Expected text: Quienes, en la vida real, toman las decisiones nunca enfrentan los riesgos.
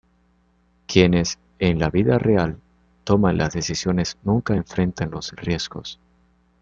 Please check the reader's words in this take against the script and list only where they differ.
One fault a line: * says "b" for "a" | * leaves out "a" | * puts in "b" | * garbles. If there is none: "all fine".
all fine